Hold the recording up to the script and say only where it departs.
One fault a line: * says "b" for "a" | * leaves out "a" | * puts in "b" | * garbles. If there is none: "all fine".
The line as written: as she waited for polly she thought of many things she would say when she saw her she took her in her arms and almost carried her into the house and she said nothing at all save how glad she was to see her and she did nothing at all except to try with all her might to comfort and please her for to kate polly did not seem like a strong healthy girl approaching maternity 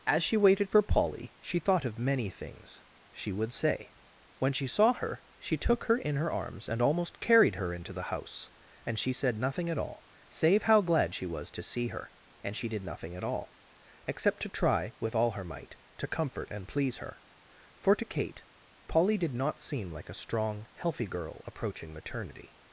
all fine